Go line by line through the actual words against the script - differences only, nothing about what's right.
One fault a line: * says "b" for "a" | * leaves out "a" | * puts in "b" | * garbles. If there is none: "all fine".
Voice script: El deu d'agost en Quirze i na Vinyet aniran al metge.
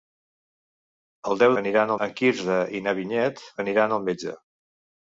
* says "aniran" for "d'agost"